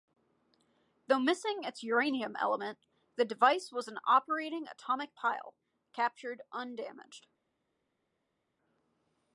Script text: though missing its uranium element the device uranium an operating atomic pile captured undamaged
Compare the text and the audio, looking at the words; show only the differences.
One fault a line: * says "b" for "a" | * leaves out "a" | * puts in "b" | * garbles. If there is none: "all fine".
* says "was" for "uranium"